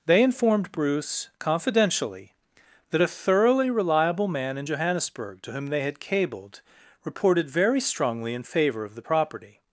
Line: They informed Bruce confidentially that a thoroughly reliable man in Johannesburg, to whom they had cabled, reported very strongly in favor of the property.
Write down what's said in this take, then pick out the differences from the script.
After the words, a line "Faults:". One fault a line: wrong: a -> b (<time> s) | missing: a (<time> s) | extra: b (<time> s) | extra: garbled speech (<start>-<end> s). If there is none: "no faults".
They informed Bruce confidentially that a thoroughly reliable man in Johannesburg, to whom they had cabled, reported very strongly in favor of the property.
Faults:
no faults